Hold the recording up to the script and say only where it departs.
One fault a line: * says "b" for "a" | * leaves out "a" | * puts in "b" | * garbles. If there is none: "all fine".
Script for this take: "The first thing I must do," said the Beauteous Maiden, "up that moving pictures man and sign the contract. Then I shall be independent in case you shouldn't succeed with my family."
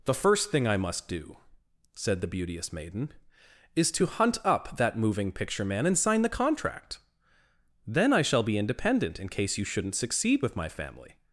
* puts in "is to hunt"
* says "picture" for "pictures"